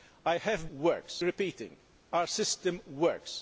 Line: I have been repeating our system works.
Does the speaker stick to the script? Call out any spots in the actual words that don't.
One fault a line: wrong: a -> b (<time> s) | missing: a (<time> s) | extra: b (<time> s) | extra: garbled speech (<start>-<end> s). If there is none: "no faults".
wrong: been -> works (0.7 s)